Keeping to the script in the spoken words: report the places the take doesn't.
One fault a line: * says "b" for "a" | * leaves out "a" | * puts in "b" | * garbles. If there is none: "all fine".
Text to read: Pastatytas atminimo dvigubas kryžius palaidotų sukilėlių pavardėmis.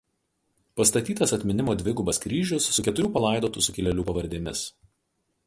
* puts in "su keturių"